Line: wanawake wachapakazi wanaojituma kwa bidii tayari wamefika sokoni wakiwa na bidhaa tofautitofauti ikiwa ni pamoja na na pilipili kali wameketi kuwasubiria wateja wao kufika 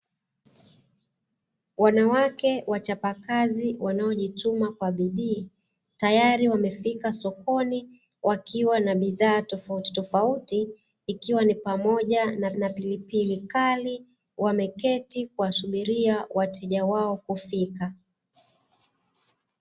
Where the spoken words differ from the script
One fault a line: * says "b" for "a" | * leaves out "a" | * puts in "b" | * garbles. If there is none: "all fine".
all fine